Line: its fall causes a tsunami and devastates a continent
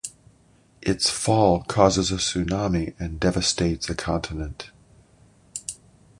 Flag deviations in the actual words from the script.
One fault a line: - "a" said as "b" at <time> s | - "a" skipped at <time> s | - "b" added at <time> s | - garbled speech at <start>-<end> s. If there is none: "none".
none